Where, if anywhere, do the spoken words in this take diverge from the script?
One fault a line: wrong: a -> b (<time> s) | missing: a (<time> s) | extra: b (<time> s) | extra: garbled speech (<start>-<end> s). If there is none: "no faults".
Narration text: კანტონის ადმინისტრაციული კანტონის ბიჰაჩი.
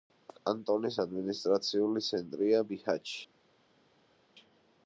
wrong: კანტონის -> ცენტრია (2.1 s)